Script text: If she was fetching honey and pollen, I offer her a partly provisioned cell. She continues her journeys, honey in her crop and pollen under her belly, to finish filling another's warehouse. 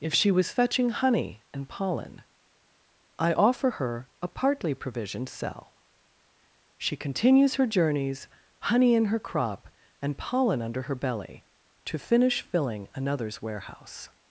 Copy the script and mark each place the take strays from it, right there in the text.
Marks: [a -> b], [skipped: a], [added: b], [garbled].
If she was fetching honey and pollen, I offer her a partly provisioned cell. She continues her journeys, honey in her crop and pollen under her belly, to finish filling another's warehouse.